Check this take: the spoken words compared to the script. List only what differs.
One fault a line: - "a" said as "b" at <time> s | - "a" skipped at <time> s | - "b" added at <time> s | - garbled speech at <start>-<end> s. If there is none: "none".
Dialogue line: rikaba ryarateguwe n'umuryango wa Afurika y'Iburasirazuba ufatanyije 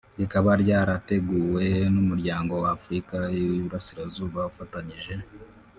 none